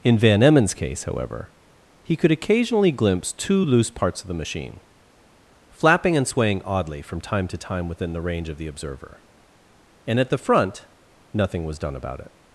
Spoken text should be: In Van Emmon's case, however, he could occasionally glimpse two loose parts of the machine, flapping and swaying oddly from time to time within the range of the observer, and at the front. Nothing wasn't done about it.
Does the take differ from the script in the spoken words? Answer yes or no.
yes